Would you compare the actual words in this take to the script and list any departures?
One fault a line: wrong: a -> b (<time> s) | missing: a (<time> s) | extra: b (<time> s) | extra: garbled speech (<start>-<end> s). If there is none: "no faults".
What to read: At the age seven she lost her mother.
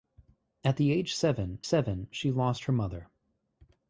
extra: seven (1.6 s)